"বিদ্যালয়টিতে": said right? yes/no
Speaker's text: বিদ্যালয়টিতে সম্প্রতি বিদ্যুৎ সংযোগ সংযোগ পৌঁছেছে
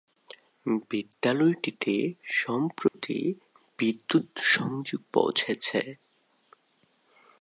yes